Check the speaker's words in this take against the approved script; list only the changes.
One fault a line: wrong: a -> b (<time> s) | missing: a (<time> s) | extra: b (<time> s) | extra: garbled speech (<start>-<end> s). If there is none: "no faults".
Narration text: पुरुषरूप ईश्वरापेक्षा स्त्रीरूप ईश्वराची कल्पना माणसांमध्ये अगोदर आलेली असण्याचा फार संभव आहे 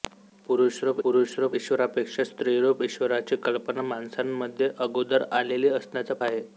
extra: पुरुषरूप (1.0 s)
missing: फार संभव (6.1 s)